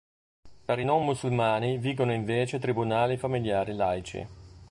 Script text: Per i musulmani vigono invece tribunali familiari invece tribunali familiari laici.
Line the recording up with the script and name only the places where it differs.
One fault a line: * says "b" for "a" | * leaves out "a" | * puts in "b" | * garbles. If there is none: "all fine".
* puts in "non"
* leaves out "invece tribunali familiari"